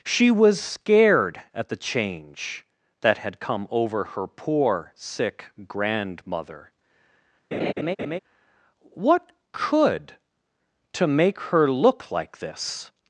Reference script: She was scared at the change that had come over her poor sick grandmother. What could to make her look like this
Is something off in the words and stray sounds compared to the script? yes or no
yes